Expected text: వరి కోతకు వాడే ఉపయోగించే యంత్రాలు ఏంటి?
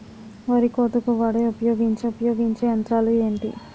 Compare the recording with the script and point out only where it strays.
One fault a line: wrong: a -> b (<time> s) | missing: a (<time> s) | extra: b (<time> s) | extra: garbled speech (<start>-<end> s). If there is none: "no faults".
extra: ఉపయోగించే (2.1 s)